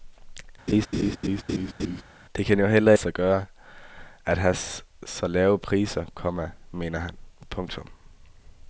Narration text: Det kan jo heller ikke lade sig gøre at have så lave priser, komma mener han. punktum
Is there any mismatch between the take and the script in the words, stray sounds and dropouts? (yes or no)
yes